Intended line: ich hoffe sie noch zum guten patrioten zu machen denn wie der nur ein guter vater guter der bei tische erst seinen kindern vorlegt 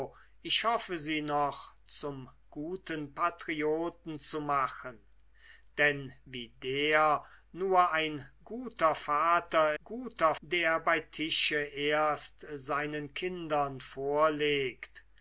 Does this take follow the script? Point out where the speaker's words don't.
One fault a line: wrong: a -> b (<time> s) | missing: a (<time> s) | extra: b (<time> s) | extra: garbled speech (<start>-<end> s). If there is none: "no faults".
no faults